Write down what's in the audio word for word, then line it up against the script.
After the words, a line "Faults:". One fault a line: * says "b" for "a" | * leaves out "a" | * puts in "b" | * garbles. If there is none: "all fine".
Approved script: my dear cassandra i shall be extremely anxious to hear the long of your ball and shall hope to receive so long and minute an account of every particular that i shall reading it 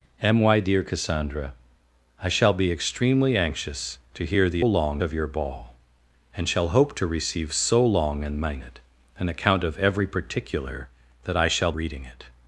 my dear cassandra i shall be extremely anxious to hear the long of your ball and shall hope to receive so long and minute an account of every particular that i shall reading it
Faults:
all fine